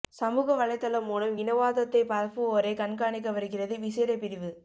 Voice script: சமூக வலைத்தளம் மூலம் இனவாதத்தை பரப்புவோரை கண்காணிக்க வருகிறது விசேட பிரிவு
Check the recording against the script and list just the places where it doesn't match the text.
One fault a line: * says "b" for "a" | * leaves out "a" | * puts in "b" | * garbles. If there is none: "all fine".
all fine